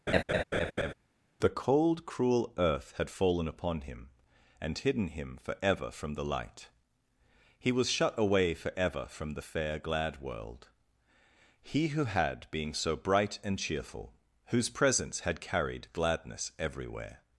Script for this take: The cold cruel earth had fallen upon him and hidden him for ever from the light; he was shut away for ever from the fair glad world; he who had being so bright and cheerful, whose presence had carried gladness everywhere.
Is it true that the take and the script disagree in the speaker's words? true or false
false